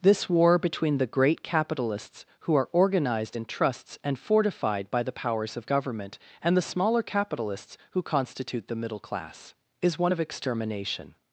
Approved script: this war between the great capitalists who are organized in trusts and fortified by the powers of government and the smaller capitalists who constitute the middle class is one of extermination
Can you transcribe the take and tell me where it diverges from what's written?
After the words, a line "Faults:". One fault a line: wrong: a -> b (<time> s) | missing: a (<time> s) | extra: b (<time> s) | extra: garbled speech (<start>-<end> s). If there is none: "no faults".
this war between the great capitalists who are organized in trusts and fortified by the powers of government and the smaller capitalists who constitute the middle class is one of extermination
Faults:
no faults